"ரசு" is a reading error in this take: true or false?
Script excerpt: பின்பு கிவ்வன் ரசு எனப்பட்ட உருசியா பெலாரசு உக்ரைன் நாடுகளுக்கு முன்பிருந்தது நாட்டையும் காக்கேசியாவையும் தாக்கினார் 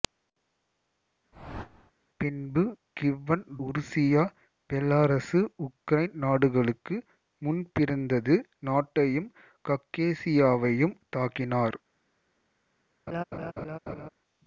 true